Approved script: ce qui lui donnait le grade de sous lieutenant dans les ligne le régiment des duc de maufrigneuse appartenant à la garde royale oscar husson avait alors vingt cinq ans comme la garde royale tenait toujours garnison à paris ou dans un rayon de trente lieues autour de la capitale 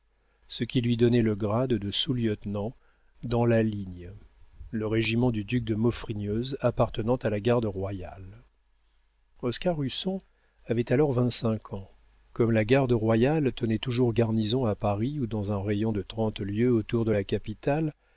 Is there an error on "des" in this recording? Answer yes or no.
yes